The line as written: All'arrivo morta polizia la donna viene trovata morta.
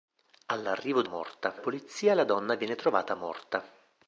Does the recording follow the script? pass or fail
pass